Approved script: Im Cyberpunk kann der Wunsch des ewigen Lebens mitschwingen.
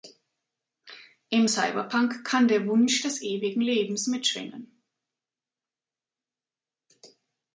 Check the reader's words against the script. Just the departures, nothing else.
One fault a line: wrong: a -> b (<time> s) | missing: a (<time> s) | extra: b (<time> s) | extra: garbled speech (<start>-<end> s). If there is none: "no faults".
no faults